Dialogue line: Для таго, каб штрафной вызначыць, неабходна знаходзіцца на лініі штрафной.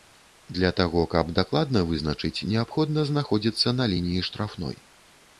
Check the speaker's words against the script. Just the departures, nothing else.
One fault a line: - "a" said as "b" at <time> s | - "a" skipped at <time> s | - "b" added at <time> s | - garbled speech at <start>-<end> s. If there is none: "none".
- "штрафной" said as "дакладна" at 1.4 s